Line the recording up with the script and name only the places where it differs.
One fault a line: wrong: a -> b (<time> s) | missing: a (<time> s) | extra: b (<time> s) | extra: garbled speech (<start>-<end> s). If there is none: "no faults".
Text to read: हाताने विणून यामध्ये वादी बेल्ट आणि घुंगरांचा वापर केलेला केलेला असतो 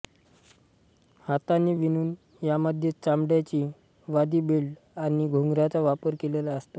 extra: चामड्याची (3.0 s)
missing: केलेला (6.5 s)